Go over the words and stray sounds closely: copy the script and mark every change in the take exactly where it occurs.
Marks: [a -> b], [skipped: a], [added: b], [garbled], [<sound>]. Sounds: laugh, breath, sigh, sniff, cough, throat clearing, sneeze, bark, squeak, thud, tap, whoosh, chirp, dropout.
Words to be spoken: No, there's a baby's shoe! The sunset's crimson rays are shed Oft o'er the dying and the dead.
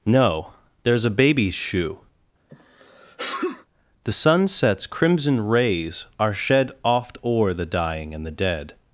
No, there's a baby's shoe! [sneeze] The sunset's crimson rays are shed Oft o'er the dying and the dead.